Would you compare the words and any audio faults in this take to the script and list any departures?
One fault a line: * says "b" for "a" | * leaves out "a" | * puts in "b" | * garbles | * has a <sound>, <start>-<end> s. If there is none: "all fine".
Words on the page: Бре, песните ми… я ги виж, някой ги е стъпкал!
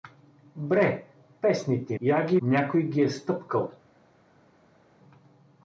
* leaves out "ми"
* leaves out "виж"